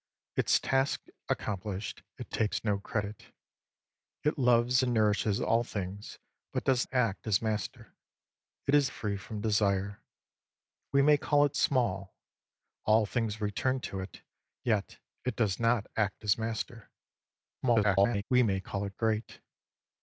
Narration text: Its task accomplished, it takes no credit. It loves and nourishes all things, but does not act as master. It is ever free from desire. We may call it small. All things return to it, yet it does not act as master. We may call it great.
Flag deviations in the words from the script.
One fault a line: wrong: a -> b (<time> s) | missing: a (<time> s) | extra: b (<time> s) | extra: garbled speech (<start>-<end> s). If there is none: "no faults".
missing: not (6.9 s)
missing: ever (8.9 s)
extra: garbled speech (17.6-18.2 s)